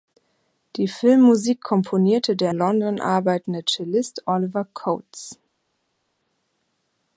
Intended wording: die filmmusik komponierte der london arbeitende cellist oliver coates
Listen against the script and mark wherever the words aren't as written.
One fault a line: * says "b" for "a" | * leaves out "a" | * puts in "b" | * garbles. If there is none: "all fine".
all fine